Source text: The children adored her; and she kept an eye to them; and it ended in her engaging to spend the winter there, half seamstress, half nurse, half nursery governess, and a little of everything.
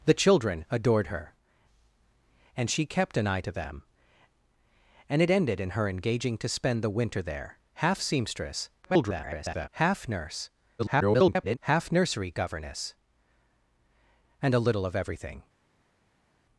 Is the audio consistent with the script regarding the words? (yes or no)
no